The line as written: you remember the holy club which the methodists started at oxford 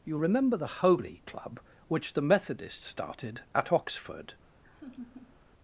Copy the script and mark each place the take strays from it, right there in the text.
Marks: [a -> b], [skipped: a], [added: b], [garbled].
you remember the holy club which the methodists started at oxford